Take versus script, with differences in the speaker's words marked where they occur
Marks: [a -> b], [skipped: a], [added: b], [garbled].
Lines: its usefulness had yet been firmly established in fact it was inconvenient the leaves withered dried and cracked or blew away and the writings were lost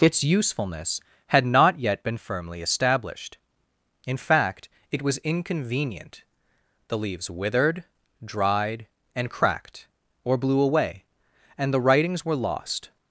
its usefulness had [added: not] yet been firmly established in fact it was inconvenient the leaves withered dried and cracked or blew away and the writings were lost